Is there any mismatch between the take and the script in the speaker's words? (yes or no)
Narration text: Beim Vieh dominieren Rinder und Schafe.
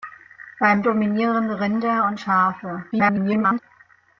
yes